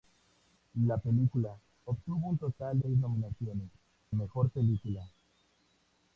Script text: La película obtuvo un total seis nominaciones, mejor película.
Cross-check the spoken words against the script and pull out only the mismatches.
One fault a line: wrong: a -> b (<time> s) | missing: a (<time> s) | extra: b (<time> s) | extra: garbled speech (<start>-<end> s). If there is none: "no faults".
no faults